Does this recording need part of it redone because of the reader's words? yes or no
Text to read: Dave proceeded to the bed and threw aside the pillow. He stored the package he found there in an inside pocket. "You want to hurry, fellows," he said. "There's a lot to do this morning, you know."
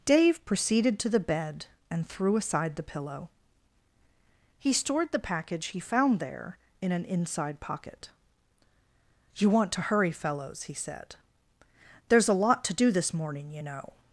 no